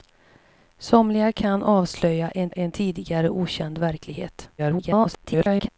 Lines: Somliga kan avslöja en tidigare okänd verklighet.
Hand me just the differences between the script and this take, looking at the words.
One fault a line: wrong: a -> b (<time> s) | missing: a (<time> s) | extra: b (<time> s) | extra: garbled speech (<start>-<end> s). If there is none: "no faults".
extra: en (2.5 s)
extra: garbled speech (4.6-5.7 s)